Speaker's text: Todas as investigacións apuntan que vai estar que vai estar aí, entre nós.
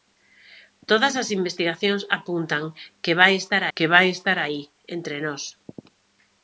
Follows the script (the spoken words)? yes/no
yes